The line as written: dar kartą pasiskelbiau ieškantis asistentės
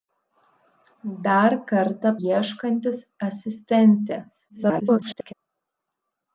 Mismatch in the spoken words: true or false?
true